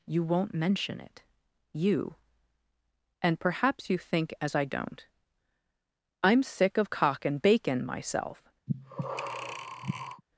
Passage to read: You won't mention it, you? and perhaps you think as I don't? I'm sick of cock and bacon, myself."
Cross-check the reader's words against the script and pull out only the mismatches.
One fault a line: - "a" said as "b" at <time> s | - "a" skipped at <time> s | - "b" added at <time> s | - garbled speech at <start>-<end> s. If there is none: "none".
none